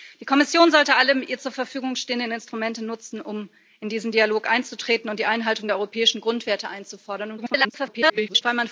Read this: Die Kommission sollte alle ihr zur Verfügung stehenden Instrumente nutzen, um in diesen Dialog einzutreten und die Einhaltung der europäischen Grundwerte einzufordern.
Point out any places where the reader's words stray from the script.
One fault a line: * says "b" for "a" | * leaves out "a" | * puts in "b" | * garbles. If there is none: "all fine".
* garbles